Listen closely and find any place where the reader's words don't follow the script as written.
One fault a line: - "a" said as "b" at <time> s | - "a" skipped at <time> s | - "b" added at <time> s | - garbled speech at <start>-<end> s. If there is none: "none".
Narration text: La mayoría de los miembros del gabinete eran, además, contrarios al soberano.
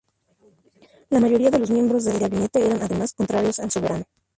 none